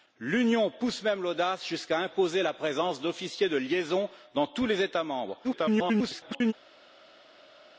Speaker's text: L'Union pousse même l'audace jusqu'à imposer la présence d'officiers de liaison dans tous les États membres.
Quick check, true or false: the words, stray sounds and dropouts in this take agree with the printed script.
false